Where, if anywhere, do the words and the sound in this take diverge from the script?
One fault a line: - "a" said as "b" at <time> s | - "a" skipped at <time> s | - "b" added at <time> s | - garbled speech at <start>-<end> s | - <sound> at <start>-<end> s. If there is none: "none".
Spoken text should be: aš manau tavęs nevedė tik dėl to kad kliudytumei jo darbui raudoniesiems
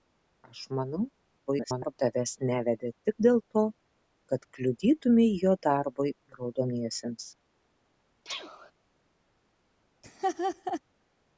- garbled speech at 1.5-1.9 s
- sneeze at 8.2-8.7 s
- laugh at 10.0-10.8 s